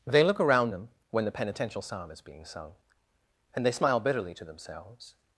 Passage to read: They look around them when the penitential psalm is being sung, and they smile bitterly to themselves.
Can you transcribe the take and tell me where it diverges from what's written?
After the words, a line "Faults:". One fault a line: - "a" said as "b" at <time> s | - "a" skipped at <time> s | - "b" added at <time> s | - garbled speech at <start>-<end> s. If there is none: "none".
They look around them when the penitential psalm is being sung, and they smile bitterly to themselves.
Faults:
none